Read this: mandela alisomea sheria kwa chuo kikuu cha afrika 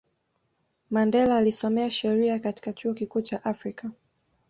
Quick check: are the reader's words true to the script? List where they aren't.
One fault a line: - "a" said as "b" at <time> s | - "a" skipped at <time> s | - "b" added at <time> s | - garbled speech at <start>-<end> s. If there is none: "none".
- "kwa" said as "katika" at 2.4 s